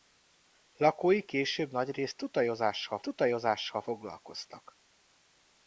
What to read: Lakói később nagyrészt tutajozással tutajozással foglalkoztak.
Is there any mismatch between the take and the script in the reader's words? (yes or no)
no